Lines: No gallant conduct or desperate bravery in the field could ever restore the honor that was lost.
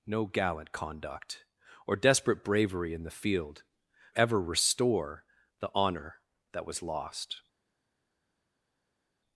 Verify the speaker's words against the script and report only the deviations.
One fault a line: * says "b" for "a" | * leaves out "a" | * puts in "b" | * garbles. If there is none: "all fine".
* leaves out "could"